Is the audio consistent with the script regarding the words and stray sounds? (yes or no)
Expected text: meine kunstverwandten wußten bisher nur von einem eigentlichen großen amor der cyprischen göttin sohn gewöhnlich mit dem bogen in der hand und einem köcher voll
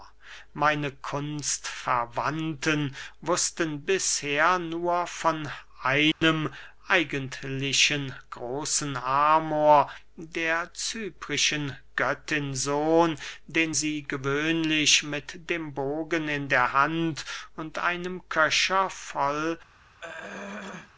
no